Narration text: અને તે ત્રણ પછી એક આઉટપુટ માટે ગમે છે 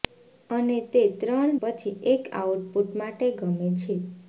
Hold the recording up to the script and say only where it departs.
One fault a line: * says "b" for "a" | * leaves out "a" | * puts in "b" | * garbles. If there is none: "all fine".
all fine